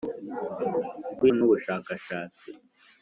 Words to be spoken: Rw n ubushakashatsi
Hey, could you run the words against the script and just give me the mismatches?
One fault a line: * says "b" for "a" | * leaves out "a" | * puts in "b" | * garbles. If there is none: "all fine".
all fine